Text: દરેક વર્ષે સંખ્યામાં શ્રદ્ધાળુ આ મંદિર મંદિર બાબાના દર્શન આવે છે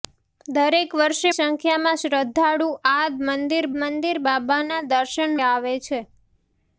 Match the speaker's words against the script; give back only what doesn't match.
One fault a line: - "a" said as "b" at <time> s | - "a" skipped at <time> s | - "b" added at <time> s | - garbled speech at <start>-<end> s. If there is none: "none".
none